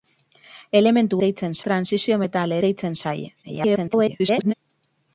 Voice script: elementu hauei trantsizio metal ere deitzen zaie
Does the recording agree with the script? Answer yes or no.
no